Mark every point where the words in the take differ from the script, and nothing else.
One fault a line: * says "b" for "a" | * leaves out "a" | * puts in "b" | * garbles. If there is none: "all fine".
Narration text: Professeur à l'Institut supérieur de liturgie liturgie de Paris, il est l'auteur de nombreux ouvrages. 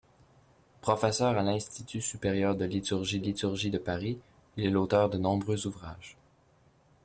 all fine